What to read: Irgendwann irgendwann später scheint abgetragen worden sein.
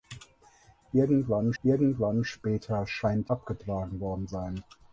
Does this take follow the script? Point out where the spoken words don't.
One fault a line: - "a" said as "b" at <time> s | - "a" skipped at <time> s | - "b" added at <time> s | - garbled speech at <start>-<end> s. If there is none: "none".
none